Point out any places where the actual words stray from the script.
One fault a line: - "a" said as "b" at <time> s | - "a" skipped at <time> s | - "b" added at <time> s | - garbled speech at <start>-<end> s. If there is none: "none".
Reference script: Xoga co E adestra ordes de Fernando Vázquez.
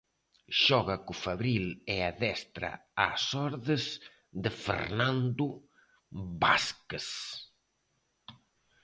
- "Fabril" added at 1.2 s
- "ás" added at 3.1 s